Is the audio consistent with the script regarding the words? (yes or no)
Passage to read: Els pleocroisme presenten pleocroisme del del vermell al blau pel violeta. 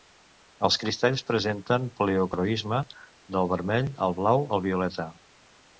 no